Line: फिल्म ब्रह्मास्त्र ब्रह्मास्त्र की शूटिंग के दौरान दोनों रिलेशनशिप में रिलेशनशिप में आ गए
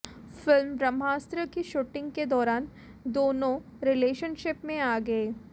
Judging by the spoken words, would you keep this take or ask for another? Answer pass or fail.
fail